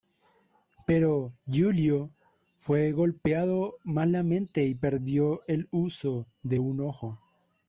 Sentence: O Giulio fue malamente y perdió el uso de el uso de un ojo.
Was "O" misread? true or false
true